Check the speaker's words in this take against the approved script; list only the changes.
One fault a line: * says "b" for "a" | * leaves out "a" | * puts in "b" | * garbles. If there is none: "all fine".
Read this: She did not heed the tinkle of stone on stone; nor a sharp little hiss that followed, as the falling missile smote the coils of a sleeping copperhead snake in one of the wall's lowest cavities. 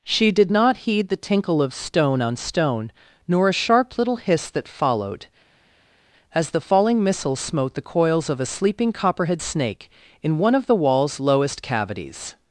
all fine